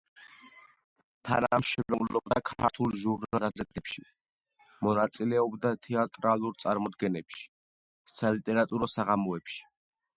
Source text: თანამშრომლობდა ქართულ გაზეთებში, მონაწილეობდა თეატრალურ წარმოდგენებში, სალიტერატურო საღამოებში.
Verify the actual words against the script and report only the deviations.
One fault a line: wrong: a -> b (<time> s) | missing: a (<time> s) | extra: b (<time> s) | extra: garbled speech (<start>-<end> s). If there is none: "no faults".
extra: ჟურნალ (3.0 s)